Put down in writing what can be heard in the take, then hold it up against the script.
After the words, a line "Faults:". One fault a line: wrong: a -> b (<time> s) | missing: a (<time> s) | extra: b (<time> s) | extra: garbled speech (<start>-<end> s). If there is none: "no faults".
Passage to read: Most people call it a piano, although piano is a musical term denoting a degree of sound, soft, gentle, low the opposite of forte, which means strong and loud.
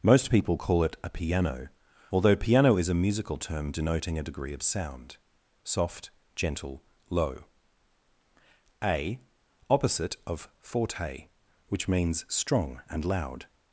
Most people call it a piano, although piano is a musical term denoting a degree of sound, soft, gentle, low a opposite of forte, which means strong and loud.
Faults:
wrong: the -> a (8.8 s)